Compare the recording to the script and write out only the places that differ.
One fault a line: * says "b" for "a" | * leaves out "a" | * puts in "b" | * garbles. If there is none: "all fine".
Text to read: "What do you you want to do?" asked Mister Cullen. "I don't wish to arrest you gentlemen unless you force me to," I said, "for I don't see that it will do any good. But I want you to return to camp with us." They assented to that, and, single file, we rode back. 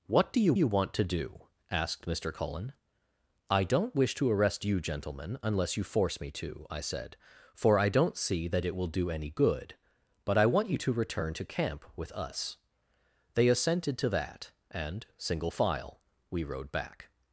all fine